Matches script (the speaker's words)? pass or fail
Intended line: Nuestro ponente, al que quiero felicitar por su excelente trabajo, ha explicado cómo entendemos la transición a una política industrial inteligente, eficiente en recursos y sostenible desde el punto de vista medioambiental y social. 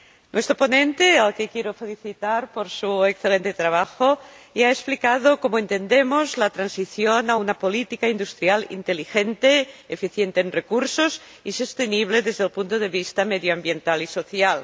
fail